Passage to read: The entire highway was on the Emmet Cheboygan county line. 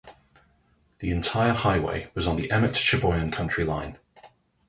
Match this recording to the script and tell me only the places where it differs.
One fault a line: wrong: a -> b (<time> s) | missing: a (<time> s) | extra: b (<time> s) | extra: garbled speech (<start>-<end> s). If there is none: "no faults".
no faults